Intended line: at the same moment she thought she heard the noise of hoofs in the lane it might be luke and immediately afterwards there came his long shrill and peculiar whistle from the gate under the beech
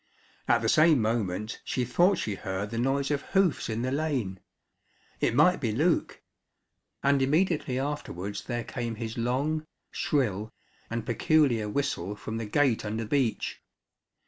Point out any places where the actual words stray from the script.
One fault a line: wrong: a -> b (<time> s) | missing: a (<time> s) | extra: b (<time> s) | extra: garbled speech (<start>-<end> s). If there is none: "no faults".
missing: the (13.0 s)